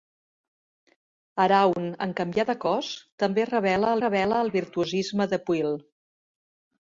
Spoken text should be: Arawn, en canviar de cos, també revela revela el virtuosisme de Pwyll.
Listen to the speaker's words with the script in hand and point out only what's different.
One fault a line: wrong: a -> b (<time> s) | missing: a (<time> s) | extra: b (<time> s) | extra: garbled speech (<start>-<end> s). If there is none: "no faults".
no faults